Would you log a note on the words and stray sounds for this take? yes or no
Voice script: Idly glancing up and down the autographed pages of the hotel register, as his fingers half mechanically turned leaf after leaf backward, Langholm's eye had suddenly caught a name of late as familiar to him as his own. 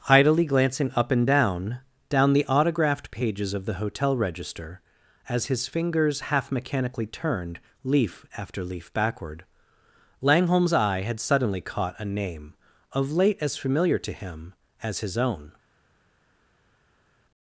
yes